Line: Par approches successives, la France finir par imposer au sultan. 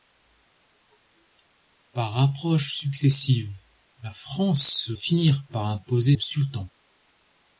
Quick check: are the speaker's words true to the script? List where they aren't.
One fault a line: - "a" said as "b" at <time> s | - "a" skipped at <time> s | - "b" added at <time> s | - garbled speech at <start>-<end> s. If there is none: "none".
none